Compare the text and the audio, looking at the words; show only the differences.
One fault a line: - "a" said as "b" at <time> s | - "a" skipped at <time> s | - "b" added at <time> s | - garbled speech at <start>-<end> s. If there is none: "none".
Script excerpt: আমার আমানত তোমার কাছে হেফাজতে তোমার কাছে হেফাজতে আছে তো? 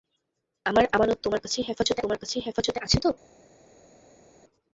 none